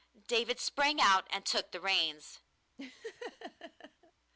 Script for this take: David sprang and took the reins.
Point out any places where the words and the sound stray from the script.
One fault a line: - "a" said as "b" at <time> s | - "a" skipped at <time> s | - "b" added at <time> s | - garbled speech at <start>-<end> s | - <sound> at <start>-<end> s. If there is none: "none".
- "out" added at 1.0 s
- laugh at 2.8-4.1 s